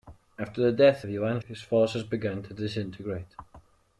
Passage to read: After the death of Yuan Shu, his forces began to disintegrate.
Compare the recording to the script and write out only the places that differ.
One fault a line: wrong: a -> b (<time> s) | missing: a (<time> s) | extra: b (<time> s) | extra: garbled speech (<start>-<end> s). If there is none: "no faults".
missing: Shu (1.4 s)